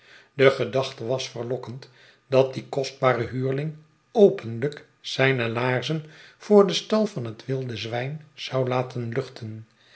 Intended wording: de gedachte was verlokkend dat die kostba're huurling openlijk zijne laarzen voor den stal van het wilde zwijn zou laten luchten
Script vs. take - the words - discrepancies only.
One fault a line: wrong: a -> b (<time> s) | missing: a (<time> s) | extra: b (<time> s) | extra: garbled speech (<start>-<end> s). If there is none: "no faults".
no faults